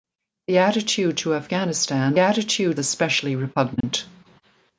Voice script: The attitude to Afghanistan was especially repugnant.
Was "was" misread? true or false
true